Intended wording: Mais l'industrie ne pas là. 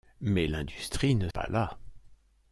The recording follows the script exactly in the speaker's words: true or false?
true